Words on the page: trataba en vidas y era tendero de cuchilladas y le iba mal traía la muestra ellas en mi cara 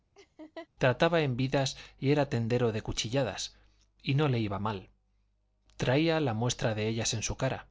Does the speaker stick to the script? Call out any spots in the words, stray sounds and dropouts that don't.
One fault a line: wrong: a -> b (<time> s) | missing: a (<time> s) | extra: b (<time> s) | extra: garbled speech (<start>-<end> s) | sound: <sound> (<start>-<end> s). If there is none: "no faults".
sound: laugh (0.2-0.7 s)
extra: no (4.1 s)
extra: de (6.7 s)
wrong: mi -> su (7.2 s)